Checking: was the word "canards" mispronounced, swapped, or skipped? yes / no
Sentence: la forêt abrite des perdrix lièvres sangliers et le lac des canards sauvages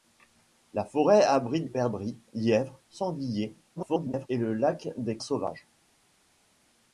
yes